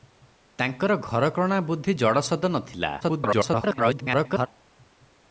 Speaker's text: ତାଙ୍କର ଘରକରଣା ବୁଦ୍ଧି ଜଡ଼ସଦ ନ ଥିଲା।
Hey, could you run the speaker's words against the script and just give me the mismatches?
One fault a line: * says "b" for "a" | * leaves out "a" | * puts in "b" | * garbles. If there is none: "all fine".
* garbles